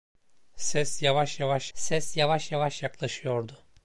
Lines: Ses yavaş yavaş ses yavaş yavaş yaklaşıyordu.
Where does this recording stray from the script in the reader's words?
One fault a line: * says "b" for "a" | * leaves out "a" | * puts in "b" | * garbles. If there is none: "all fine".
all fine